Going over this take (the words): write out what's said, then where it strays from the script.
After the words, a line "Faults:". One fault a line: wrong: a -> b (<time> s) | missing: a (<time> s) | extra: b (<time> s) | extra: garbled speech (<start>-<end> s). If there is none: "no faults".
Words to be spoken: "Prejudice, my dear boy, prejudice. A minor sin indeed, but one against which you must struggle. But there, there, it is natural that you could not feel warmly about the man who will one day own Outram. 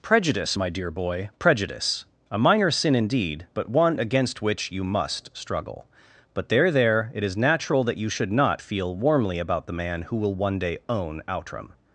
"Prejudice, my dear boy, prejudice. A minor sin indeed, but one against which you must struggle. But there, there, it is natural that you should not feel warmly about the man who will one day own Outram.
Faults:
wrong: could -> should (8.1 s)